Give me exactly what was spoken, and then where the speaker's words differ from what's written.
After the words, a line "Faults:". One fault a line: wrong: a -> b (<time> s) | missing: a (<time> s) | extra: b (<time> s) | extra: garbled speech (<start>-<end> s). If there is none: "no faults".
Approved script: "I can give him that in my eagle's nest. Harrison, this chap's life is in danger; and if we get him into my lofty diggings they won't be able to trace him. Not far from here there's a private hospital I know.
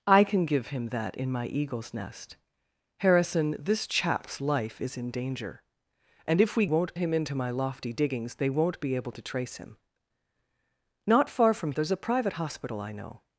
"I can give him that in my eagle's nest. Harrison, this chap's life is in danger; and if we won't him into my lofty diggings they won't be able to trace him. Not far from there's a private hospital I know.
Faults:
wrong: get -> won't (6.6 s)
missing: here (11.7 s)